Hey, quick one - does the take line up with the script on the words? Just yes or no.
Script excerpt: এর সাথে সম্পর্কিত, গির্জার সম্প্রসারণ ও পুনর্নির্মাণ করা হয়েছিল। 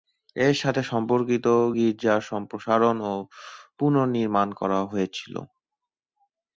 yes